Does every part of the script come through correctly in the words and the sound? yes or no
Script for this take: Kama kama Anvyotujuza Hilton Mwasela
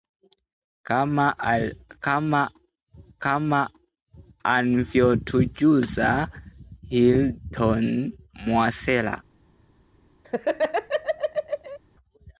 no